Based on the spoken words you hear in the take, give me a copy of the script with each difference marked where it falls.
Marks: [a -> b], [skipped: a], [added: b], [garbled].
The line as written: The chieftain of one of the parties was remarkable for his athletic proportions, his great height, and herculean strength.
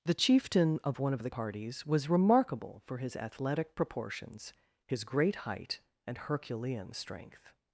The chieftain of one of the parties was remarkable for his athletic proportions, his great height, and herculean strength.